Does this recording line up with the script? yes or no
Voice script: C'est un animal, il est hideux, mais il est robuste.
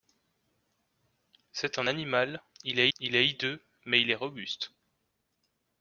no